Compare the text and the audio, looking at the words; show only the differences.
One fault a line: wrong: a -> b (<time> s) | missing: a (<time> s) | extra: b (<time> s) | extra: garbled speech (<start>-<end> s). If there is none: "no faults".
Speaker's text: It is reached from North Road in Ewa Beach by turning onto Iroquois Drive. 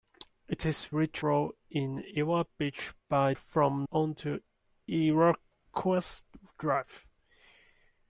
missing: from North (1.2 s)
wrong: turning -> from (3.3 s)